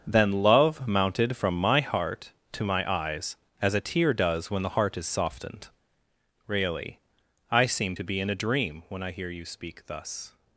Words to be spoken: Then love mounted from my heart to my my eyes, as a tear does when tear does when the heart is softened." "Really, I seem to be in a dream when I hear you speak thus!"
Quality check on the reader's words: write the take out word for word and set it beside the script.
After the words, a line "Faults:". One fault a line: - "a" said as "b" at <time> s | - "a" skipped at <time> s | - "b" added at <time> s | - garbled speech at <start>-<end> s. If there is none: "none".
Then love mounted from my heart to my eyes, as a tear does when the heart is softened." "Really, I seem to be in a dream when I hear you speak thus!"
Faults:
- "my" skipped at 2.9 s
- "tear does when" skipped at 4.6 s